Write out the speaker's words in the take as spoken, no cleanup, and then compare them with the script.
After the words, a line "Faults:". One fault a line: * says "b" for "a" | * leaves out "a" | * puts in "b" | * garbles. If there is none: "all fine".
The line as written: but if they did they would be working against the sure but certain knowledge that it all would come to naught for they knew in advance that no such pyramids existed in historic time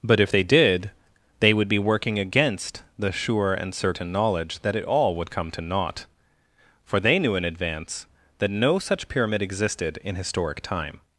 but if they did they would be working against the sure and certain knowledge that it all would come to naught for they knew in advance that no such pyramid existed in historic time
Faults:
* says "and" for "but"
* says "pyramid" for "pyramids"